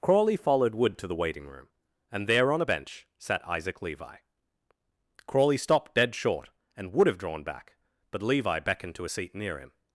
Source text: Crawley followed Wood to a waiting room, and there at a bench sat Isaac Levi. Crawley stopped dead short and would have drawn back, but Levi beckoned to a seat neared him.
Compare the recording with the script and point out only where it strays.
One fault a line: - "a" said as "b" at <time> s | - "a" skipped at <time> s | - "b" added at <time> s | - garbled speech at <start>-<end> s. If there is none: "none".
- "a" said as "the" at 1.1 s
- "at" said as "on" at 2.5 s
- "neared" said as "near" at 9.3 s